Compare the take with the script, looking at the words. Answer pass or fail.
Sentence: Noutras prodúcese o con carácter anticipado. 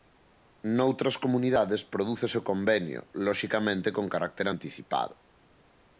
fail